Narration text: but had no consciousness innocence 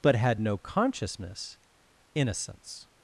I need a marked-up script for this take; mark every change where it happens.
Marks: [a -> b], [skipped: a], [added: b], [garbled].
but had no consciousness innocence